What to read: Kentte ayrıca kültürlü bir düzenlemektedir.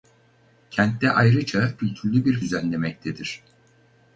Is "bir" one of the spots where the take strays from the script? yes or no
no